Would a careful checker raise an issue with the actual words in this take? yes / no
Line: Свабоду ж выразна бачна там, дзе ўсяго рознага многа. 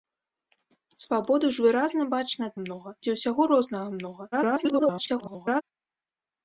yes